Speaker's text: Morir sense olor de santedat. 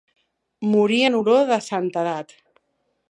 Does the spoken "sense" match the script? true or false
false